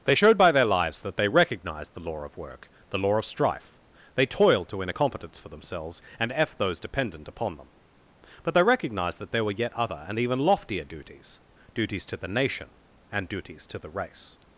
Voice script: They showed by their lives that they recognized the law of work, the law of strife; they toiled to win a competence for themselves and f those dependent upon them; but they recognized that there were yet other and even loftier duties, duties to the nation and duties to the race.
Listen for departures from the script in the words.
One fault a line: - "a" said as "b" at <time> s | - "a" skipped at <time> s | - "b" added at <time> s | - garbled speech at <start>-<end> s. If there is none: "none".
none